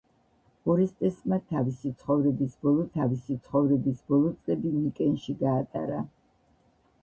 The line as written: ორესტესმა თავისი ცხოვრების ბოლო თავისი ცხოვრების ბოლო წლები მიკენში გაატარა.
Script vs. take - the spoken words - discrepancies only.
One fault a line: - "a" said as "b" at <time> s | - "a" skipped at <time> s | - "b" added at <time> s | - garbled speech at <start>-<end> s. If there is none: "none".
none